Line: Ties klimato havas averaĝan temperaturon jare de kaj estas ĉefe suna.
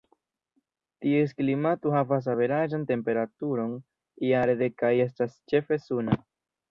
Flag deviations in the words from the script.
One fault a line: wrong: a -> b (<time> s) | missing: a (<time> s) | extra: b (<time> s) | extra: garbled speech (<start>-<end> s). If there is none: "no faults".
no faults